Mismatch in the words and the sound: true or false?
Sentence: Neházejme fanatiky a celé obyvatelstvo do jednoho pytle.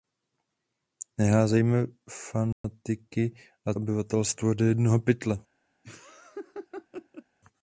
true